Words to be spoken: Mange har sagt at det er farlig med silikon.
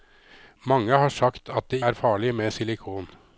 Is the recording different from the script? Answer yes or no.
no